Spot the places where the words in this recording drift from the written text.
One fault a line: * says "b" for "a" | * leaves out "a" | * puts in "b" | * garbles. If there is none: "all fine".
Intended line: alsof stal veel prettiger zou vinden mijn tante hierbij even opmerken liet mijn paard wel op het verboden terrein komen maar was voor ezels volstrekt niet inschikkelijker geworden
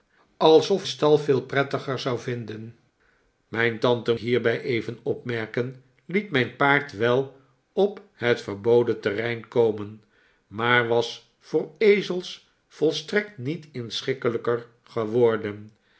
all fine